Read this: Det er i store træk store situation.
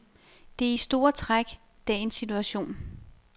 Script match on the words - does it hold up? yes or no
no